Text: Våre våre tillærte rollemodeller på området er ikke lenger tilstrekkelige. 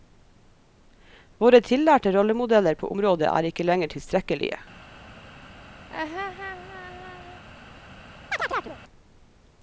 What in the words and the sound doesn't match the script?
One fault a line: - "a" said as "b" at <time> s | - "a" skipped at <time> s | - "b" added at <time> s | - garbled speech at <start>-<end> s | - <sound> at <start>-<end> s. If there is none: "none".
- "våre" skipped at 1.6 s
- laugh at 5.9-7.4 s
- chirp at 8.3-8.8 s